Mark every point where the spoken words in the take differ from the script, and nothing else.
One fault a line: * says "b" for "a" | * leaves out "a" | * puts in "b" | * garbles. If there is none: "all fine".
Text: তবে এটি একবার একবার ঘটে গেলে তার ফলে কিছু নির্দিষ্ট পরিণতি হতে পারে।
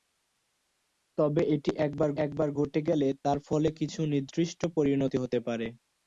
all fine